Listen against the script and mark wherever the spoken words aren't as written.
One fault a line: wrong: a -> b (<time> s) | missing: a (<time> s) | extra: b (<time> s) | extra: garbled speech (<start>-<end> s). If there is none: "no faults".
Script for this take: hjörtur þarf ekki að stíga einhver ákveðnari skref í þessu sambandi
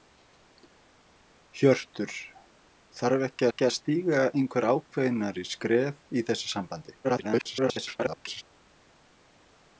extra: ekki (3.5 s)
extra: garbled speech (7.0-8.4 s)